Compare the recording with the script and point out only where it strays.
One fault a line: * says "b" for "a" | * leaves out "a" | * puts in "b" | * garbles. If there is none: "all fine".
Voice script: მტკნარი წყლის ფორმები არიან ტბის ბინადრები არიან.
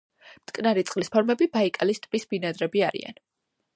* says "ბაიკალის" for "არიან"